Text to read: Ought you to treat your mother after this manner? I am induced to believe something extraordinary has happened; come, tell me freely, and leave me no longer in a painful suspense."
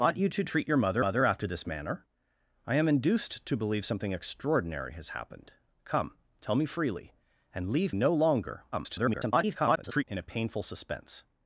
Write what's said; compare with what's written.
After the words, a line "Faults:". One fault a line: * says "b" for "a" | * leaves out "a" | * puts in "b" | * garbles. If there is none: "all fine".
Ought you to treat your mother mother after this manner? I am induced to believe something extraordinary has happened; come, tell me freely, and leave no longer [garbled] in a painful suspense."
Faults:
* puts in "mother"
* leaves out "me"
* garbles